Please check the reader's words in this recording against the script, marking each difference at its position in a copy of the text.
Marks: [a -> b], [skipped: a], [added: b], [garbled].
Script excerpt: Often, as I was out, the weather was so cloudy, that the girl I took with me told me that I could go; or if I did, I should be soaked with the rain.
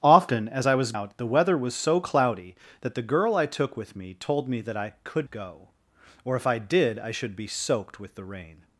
Often, as I was out, the weather was so cloudy, that the girl I took with me told me that I could go; or if I did, I should be soaked with the rain.